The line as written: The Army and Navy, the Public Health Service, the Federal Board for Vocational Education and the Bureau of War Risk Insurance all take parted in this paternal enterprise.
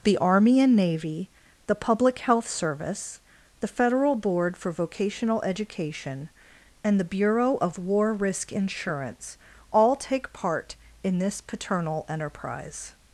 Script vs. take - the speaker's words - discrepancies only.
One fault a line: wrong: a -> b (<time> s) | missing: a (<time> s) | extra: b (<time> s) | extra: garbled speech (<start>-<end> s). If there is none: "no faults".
wrong: parted -> part (10.3 s)